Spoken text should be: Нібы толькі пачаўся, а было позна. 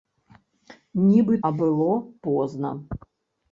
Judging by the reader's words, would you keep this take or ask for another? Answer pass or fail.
fail